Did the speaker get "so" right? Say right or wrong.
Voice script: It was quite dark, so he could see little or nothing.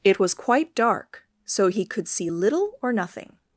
right